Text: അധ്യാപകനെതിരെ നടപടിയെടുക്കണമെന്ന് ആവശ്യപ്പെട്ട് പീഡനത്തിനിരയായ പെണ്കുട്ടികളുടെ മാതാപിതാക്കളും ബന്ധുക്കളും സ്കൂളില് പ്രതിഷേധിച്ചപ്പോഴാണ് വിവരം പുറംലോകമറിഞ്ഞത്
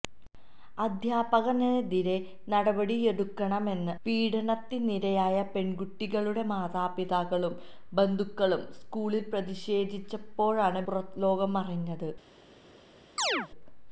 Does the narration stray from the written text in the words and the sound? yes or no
yes